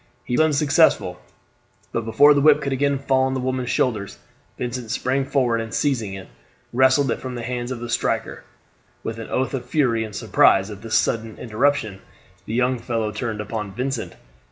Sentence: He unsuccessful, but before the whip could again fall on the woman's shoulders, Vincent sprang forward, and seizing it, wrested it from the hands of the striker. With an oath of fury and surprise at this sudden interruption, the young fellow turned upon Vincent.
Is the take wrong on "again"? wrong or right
right